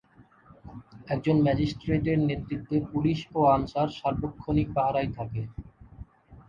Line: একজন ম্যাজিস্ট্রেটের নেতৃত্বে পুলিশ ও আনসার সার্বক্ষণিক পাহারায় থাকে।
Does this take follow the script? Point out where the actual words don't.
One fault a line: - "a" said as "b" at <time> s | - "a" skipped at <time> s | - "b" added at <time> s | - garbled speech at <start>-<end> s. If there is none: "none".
none